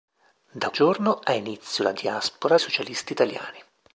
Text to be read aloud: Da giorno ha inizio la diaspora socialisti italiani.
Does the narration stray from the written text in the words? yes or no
no